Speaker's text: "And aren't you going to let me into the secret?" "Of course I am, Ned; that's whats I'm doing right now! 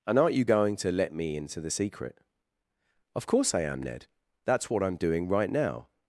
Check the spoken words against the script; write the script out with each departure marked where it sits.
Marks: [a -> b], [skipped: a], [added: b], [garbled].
"And aren't you going to let me into the secret?" "Of course I am, Ned; that's [whats -> what] I'm doing right now!